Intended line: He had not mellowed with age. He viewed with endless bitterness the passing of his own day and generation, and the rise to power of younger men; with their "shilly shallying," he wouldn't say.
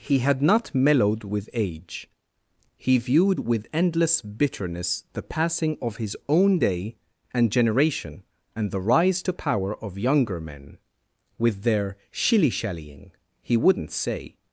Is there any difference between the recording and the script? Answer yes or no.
no